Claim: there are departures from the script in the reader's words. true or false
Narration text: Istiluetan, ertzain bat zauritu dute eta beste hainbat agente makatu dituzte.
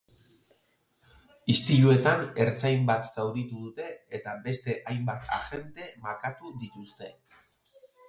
false